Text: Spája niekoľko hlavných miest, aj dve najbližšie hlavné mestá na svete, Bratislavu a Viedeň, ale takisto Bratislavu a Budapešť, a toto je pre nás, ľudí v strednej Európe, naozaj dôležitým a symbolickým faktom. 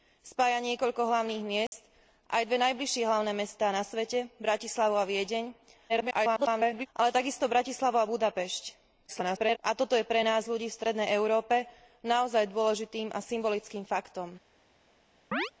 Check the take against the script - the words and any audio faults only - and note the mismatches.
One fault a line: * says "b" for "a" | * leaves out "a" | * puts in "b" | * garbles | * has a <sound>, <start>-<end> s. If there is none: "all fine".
* has a dropout, 1.7-1.7 s
* garbles
* garbles
* has a chirp, 15.3-15.5 s